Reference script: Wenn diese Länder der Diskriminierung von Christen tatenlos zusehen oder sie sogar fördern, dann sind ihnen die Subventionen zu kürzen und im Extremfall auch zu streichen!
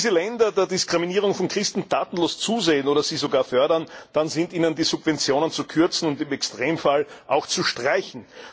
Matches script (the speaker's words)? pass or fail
pass